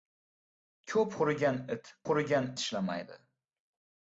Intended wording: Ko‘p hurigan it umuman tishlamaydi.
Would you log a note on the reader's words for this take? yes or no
yes